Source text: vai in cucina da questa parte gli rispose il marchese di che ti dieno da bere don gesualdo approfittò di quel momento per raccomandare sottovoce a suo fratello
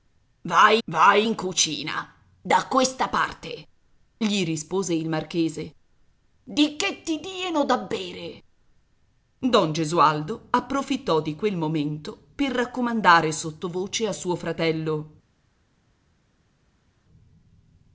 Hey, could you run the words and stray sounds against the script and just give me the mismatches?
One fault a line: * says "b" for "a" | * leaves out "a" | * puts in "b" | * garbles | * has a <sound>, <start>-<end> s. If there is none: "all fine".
* puts in "vai"